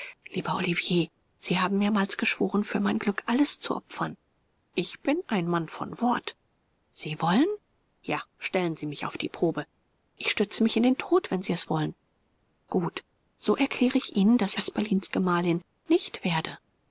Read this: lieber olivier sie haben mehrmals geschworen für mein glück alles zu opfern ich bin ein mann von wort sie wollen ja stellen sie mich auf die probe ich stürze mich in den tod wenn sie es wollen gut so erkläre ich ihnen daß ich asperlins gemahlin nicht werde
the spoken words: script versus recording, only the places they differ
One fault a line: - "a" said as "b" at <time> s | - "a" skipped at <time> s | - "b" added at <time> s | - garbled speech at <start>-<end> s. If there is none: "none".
- "ich" skipped at 14.6 s